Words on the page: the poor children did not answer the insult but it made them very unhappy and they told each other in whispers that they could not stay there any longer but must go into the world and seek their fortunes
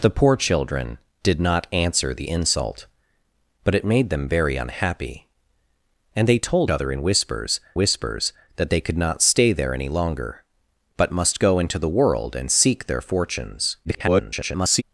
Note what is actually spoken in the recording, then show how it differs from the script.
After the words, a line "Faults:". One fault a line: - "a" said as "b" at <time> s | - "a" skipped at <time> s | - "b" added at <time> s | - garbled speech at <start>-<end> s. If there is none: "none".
the poor children did not answer the insult but it made them very unhappy and they told other in whispers whispers that they could not stay there any longer but must go into the world and seek their fortunes [garbled]
Faults:
- "each" skipped at 6.7 s
- "whispers" added at 7.7 s
- garbled speech at 13.8-14.8 s